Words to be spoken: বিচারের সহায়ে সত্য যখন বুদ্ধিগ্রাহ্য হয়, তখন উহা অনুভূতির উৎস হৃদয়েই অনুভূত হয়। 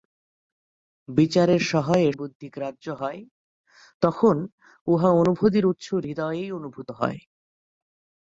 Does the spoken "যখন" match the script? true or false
false